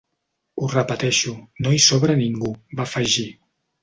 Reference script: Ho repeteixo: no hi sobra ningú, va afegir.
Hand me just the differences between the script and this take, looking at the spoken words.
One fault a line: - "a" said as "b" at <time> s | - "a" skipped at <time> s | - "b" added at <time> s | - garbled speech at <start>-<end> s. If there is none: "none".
none